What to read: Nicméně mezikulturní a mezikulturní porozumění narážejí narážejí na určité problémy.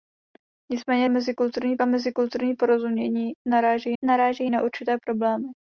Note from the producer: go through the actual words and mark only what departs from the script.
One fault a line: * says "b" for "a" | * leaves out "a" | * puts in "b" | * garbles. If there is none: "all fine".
all fine